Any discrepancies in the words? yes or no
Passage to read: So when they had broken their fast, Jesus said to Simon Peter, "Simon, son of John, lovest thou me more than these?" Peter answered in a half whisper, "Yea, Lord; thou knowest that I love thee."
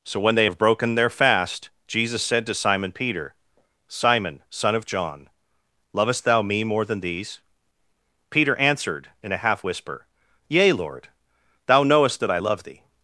yes